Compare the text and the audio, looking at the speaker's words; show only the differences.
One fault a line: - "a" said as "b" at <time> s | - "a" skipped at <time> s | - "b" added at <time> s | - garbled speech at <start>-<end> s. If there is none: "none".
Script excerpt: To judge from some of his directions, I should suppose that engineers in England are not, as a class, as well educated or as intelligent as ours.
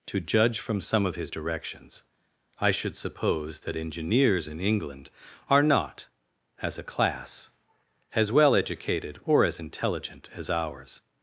none